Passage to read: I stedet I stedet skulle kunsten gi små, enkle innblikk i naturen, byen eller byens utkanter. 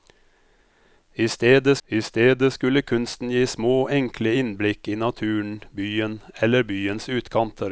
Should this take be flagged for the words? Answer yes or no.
no